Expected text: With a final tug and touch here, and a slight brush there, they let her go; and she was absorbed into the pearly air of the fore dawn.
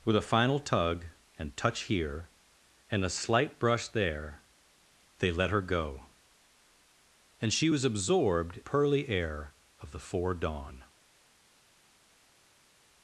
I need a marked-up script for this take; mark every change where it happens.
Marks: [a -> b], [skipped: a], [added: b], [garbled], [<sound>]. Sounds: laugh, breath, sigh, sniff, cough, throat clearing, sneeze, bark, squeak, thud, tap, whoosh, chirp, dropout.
With a final tug and touch here, and a slight brush there, they let her go; and she was absorbed [skipped: into the] pearly air of the fore dawn.